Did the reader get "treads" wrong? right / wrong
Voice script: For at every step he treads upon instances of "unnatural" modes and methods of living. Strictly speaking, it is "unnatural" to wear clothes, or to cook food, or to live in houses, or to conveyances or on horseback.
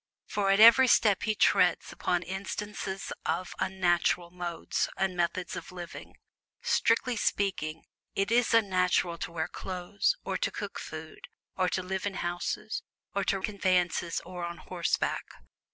right